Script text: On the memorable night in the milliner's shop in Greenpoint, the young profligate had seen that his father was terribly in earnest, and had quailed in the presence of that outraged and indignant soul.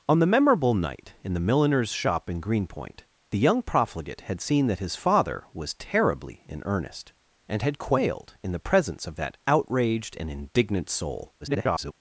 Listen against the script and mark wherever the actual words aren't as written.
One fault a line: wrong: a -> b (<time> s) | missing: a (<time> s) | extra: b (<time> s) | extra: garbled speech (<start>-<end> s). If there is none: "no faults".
extra: garbled speech (11.4-11.9 s)